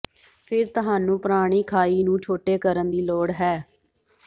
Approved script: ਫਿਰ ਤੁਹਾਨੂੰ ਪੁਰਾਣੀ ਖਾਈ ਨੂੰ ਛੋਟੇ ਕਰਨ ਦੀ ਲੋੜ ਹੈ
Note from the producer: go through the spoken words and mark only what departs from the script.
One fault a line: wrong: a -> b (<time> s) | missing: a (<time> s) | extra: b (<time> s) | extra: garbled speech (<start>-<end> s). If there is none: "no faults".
no faults